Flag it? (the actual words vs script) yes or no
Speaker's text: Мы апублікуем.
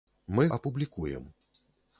no